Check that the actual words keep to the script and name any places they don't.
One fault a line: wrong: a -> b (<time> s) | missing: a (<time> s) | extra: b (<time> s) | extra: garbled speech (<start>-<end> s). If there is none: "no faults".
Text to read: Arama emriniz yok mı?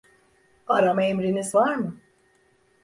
wrong: yok -> var (1.5 s)